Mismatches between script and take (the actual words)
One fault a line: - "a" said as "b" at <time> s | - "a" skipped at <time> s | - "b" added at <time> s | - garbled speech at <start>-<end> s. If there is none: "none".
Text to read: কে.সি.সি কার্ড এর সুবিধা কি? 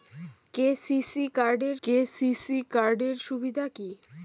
- "কে.সি.সি কার্ড এর" added at 1.8 s